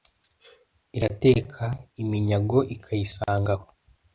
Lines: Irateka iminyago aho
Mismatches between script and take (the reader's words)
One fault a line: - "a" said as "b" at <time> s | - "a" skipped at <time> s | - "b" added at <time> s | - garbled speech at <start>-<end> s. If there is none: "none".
- "ikayisanga" added at 2.8 s